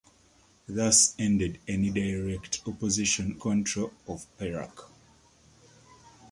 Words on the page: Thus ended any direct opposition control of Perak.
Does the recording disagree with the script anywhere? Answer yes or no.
no